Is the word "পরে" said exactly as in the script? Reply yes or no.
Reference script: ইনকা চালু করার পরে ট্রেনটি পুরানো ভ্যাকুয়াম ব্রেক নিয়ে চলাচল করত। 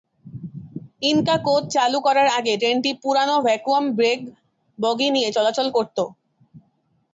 no